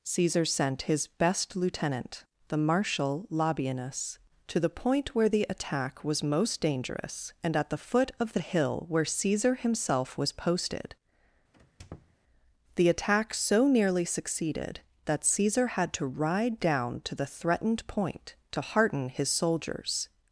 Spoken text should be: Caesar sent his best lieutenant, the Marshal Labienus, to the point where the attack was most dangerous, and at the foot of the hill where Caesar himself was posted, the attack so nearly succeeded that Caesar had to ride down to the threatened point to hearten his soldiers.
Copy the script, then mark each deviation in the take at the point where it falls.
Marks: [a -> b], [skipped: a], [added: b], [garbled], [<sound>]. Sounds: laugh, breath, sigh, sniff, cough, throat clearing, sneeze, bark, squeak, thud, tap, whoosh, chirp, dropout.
Caesar sent his best lieutenant, the Marshal Labienus, to the point where the attack was most dangerous, and at the foot of the hill where Caesar himself was posted, [squeak] the attack so nearly succeeded that Caesar had to ride down to the threatened point to hearten his soldiers.